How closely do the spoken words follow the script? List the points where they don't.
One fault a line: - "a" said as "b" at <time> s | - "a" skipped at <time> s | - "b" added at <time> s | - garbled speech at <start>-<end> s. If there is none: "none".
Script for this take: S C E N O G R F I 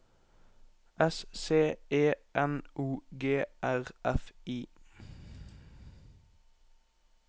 none